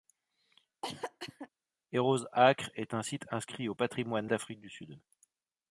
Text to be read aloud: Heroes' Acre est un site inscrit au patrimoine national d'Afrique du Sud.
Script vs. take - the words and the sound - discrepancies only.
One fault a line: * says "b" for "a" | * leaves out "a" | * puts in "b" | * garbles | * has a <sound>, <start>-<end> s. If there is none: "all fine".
* has a cough, 0.8-1.5 s
* leaves out "national"